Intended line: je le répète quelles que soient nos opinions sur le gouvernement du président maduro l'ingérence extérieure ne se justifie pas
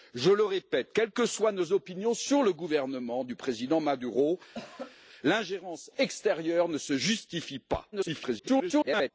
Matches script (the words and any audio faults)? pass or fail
fail